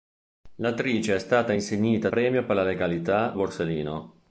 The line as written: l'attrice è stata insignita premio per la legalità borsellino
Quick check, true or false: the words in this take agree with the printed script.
true